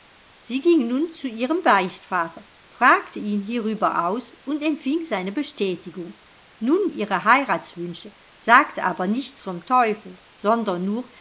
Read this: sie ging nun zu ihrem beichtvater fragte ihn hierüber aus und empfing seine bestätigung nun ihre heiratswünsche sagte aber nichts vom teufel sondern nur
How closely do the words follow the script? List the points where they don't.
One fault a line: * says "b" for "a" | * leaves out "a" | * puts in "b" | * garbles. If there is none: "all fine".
all fine